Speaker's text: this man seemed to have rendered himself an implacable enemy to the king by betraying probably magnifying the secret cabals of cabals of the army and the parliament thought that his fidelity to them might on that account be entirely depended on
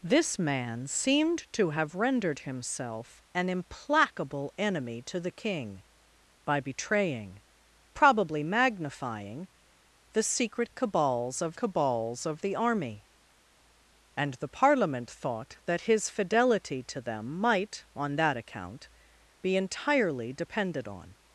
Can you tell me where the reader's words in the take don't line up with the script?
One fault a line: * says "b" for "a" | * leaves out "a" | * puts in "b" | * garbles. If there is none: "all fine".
all fine